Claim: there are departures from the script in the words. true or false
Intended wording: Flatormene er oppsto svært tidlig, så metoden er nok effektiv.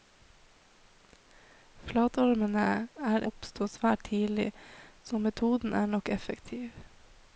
false